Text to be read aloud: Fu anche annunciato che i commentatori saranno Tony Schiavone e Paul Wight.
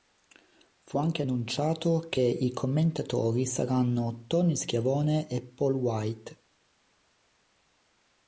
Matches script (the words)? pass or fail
pass